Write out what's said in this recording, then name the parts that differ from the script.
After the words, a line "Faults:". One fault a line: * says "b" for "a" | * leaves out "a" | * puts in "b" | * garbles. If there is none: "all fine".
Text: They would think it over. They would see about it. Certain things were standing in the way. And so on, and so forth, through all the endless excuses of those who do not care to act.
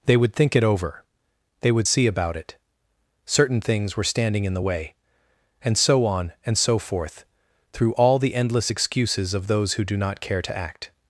They would think it over. They would see about it. Certain things were standing in the way. And so on, and so forth, through all the endless excuses of those who do not care to act.
Faults:
all fine